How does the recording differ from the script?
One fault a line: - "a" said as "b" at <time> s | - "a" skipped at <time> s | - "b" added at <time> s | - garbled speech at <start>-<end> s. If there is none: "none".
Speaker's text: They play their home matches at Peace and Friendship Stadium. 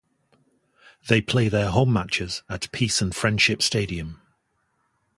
none